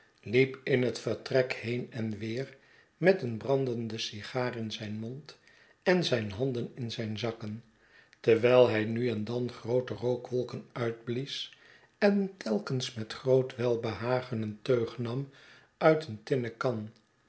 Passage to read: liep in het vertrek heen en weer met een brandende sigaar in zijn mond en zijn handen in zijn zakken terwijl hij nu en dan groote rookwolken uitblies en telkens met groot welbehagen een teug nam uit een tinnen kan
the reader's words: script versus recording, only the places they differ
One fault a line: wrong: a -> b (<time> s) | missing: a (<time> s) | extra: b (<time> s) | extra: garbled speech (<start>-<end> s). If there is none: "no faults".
no faults